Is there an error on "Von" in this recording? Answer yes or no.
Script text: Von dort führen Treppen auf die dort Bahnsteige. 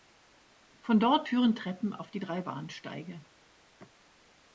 no